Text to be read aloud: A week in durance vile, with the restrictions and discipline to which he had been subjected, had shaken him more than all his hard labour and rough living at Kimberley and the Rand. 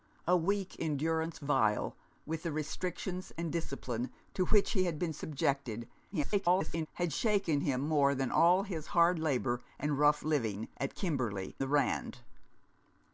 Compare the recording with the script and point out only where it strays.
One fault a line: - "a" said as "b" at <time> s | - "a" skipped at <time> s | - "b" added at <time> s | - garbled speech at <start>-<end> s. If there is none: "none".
- garbled speech at 6.1-6.9 s
- "and" skipped at 11.6 s